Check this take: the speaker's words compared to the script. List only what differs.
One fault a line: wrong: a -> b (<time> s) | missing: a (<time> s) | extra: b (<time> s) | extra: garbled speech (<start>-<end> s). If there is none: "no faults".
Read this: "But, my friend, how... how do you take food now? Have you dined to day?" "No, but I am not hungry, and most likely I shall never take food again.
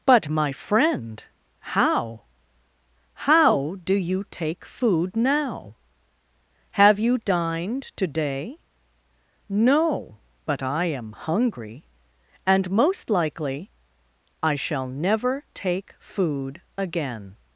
missing: not (11.1 s)